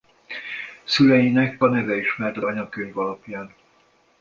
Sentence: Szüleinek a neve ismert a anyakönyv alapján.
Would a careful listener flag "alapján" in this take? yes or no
no